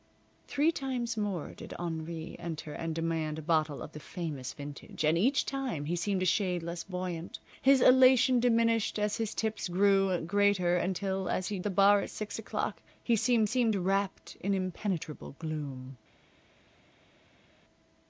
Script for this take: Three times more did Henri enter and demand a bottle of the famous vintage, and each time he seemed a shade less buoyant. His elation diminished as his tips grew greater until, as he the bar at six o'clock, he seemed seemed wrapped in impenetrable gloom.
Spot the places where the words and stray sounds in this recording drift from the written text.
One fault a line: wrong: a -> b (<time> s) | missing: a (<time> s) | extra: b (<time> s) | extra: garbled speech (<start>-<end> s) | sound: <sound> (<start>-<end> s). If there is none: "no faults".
no faults